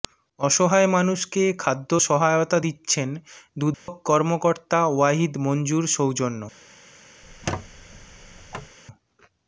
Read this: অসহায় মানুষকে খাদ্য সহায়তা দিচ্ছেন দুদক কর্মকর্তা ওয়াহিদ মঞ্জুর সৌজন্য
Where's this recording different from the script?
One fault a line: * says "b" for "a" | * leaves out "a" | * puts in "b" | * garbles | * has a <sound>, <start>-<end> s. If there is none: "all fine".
* has a dropout, 3.7-3.9 s
* has a squeak, 7.2-8.8 s